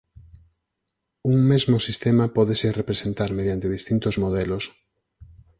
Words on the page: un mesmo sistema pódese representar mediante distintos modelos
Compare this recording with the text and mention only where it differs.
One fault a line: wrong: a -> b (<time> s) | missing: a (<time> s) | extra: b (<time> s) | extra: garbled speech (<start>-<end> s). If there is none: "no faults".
no faults